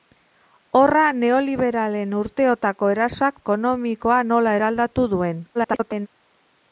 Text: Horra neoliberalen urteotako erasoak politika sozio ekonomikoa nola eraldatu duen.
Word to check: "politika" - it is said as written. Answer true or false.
false